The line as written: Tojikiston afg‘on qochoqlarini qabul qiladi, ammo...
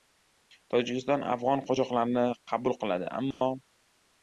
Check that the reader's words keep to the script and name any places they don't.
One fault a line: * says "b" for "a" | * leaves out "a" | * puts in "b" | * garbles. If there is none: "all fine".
all fine